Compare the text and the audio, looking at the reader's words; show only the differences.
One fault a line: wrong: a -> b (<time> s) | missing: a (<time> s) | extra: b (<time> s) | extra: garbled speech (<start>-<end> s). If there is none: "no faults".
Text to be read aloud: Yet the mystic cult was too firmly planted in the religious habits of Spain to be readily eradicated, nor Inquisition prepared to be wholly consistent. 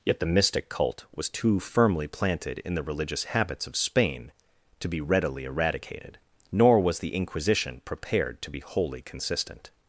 extra: was the (6.8 s)